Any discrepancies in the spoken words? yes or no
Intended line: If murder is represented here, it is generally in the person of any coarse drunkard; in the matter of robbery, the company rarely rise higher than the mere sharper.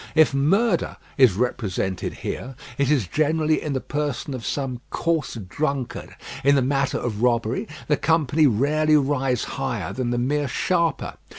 yes